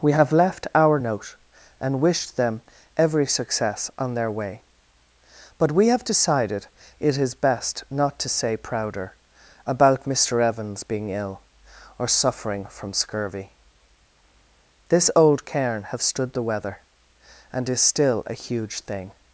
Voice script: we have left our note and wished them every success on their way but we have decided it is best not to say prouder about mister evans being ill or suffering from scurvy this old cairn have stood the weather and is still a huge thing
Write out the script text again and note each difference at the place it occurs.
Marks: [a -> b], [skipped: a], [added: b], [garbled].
we have left our note and wished them every success on their way but we have decided it is best not to say prouder about mister evans being ill or suffering from scurvy this old cairn have stood the weather and is still a huge thing